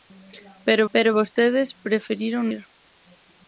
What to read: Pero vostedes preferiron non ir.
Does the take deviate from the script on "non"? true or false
true